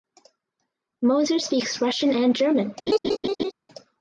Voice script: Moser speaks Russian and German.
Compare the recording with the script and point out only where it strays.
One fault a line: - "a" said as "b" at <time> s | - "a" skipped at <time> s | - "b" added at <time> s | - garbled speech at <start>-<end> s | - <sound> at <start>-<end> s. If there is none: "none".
- laugh at 2.9-3.5 s